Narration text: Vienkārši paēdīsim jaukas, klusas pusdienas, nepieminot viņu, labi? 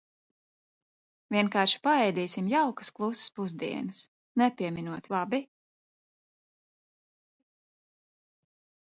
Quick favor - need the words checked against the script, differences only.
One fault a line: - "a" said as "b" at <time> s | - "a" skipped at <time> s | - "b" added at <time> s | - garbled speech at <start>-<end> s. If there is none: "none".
- "viņu" skipped at 5.1 s